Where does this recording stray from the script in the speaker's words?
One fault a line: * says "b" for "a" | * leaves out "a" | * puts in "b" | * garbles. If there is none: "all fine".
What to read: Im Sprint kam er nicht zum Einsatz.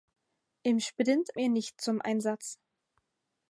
* leaves out "kam"